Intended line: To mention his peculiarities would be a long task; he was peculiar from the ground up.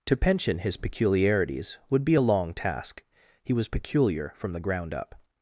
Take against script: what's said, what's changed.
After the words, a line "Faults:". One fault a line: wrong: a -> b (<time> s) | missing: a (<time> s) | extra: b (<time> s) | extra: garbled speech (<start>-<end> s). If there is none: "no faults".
To pension his peculiarities would be a long task; he was peculiar from the ground up.
Faults:
wrong: mention -> pension (0.2 s)